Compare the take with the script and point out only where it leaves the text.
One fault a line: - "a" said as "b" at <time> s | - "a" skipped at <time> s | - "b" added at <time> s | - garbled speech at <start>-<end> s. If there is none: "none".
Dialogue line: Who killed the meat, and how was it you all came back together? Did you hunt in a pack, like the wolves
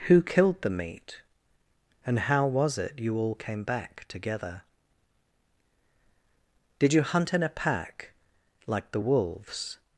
none